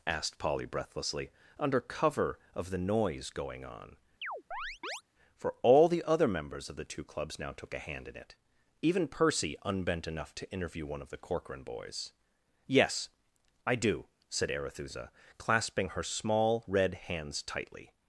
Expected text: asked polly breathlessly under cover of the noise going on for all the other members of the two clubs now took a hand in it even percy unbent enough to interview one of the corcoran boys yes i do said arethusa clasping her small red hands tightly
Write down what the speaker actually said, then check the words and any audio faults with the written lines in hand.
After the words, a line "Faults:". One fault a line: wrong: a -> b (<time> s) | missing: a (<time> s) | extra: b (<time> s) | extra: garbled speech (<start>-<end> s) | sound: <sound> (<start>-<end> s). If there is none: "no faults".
asked polly breathlessly under cover of the noise going on for all the other members of the two clubs now took a hand in it even percy unbent enough to interview one of the corcoran boys yes i do said arethusa clasping her small red hands tightly
Faults:
sound: chirp (4.2-5.0 s)